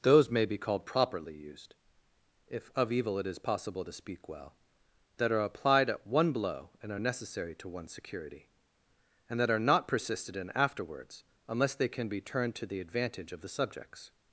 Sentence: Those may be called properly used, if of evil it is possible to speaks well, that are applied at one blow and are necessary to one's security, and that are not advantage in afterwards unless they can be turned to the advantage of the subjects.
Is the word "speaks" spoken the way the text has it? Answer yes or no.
no